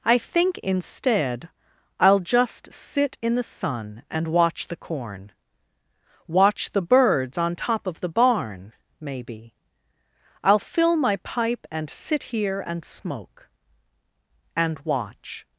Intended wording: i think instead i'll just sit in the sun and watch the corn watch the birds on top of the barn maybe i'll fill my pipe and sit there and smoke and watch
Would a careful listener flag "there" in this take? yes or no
yes